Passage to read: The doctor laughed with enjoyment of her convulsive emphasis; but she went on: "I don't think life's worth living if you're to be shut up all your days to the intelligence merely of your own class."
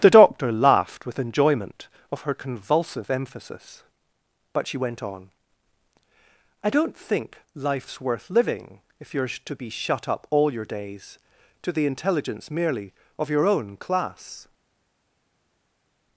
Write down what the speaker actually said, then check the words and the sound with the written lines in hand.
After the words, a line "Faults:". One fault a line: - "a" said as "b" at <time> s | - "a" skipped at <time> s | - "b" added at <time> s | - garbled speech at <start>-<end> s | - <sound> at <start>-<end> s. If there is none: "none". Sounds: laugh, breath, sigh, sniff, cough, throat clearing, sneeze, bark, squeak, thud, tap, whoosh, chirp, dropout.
The doctor laughed with enjoyment of her convulsive emphasis; but she went on: "I don't think life's worth living if you're to be shut up all your days to the intelligence merely of your own class."
Faults:
none